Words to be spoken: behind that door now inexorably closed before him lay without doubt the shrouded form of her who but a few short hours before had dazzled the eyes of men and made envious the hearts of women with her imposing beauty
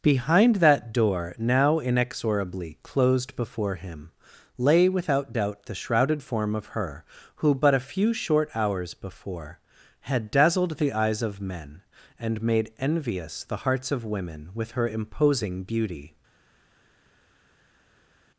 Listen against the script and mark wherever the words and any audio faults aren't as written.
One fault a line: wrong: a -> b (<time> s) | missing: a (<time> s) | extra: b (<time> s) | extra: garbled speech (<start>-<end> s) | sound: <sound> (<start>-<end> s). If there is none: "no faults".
no faults